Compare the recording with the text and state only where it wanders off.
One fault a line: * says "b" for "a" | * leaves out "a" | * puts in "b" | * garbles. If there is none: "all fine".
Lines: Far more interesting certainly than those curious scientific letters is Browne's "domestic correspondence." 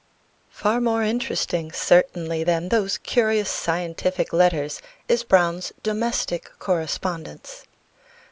all fine